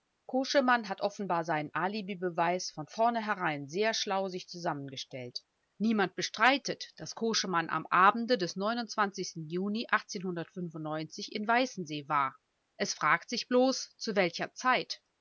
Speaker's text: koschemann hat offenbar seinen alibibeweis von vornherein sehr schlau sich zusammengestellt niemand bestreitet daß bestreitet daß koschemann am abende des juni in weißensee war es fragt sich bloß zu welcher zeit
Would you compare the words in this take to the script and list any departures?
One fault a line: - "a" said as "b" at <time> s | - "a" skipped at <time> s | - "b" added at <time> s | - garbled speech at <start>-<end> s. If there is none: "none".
- "bestreitet daß" skipped at 7.1 s